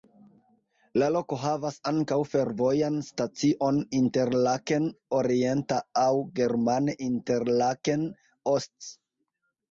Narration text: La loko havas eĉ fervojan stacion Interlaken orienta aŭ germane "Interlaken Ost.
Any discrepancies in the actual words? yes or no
yes